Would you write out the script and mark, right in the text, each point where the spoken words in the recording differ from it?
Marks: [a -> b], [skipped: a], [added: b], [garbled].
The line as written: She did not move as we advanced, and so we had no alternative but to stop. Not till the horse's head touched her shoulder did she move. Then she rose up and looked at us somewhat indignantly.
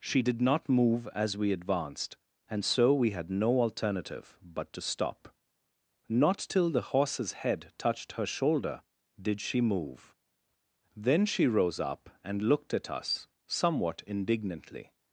She did not move as we advanced, and so we had no alternative but to stop. Not till the horse's head touched her shoulder did she move. Then she rose up and looked at us somewhat indignantly.